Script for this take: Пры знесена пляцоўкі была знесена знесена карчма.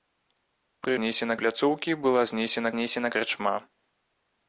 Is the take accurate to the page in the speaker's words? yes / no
yes